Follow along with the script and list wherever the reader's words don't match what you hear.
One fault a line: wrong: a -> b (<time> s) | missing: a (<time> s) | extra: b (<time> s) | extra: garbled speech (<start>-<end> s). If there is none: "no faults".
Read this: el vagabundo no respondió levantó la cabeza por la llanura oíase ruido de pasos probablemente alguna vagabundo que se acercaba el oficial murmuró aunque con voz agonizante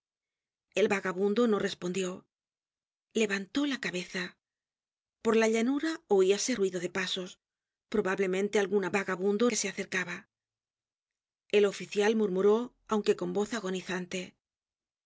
no faults